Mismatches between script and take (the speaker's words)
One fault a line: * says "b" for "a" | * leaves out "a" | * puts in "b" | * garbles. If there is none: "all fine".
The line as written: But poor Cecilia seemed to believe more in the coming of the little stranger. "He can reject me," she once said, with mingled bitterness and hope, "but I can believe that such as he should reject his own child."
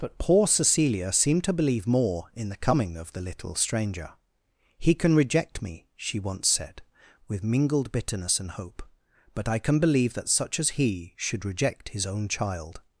all fine